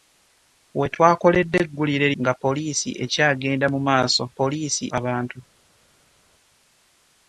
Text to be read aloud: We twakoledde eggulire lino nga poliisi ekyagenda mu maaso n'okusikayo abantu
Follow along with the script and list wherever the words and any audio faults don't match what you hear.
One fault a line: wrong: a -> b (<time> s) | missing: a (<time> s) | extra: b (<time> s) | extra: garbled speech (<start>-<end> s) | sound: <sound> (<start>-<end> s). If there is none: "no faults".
missing: lino (2.1 s)
wrong: n'okusikayo -> poliisi (4.4 s)